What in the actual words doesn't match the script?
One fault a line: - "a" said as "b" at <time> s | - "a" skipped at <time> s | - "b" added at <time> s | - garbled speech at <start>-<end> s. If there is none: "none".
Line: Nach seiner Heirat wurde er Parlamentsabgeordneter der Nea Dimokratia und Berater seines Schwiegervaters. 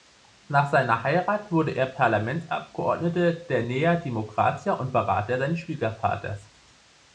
none